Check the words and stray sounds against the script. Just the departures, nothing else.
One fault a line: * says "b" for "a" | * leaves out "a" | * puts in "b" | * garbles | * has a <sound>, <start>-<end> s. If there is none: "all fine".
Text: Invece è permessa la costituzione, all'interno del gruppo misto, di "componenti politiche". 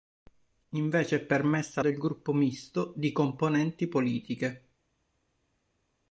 * leaves out "la costituzione all'interno"